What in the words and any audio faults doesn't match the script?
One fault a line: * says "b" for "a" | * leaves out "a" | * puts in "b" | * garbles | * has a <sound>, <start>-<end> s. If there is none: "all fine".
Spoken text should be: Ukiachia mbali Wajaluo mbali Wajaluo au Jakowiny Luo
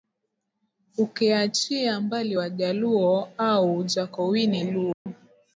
* leaves out "mbali Wajaluo"
* has a dropout, 4.9-5.1 s